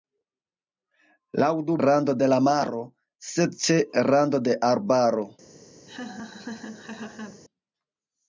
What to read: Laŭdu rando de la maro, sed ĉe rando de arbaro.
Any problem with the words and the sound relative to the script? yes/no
yes